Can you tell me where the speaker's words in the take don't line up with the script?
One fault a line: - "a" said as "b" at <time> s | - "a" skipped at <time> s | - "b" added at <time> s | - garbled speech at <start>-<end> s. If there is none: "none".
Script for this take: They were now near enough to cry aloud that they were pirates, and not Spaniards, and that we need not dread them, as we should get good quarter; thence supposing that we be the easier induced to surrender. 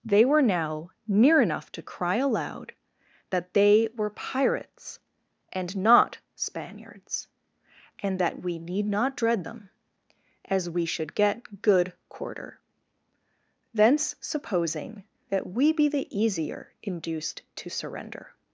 none